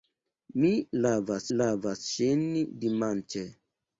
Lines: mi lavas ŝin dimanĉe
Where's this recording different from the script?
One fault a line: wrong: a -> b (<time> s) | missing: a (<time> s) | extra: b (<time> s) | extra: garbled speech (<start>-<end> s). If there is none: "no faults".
extra: lavas (1.6 s)